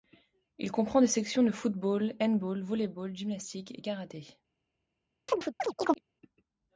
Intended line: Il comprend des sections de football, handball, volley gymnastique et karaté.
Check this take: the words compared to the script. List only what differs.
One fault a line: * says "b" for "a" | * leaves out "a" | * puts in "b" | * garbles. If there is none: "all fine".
* puts in "ball"